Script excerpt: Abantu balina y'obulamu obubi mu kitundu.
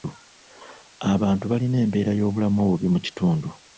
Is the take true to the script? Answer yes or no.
no